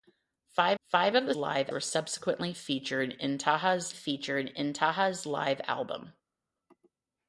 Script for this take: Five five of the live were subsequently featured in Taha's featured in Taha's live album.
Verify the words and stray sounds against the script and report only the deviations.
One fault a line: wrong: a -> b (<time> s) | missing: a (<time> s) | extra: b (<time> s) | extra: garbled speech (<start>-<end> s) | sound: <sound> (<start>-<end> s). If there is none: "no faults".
no faults